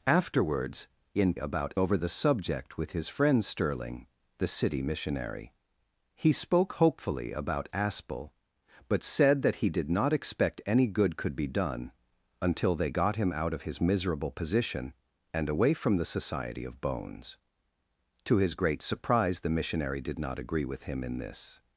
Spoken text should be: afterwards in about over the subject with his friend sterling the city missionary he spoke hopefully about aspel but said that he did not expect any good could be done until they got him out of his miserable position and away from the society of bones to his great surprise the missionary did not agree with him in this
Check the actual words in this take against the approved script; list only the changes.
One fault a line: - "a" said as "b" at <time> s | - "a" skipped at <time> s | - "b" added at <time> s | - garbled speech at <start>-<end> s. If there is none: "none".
none